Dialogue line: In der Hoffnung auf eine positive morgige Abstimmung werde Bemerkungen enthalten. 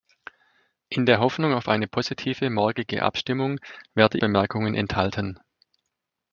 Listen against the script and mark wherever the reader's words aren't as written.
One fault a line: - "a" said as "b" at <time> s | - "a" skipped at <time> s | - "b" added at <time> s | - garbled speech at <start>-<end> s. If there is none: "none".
none